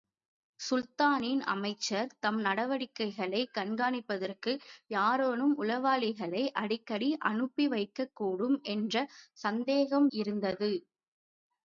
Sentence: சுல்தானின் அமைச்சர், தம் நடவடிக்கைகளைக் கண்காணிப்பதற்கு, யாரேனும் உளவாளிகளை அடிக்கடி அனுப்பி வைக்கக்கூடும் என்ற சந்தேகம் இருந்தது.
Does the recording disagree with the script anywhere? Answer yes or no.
no